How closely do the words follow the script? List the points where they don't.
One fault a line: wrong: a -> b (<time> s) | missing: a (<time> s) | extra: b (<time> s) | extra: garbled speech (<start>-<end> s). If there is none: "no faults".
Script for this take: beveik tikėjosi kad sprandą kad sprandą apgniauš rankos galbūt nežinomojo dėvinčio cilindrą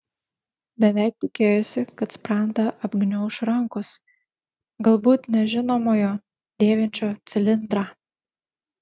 missing: kad sprandą (2.6 s)